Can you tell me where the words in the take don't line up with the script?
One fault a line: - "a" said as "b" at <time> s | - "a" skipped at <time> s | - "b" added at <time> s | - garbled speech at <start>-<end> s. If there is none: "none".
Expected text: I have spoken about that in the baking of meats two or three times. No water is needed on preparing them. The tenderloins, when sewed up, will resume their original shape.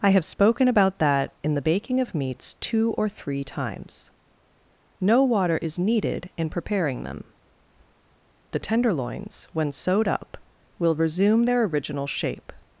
- "on" said as "in" at 6.4 s